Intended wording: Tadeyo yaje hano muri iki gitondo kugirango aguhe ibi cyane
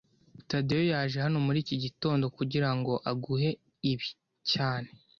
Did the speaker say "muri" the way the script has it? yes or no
yes